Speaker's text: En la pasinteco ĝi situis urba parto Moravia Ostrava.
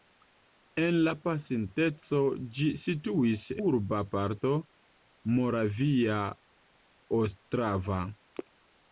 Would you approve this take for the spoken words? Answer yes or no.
yes